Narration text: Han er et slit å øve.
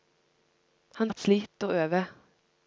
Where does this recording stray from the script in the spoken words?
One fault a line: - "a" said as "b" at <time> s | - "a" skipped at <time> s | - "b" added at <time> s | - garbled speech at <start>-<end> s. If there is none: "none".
none